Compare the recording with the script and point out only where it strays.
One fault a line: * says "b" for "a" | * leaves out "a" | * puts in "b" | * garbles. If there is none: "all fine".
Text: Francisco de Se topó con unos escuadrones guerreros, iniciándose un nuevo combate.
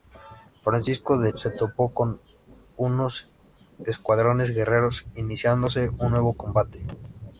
all fine